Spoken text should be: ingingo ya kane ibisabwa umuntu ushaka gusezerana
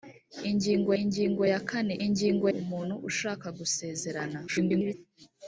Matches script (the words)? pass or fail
fail